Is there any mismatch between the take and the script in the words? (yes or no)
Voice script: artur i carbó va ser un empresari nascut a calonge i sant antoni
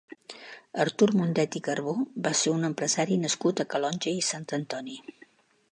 yes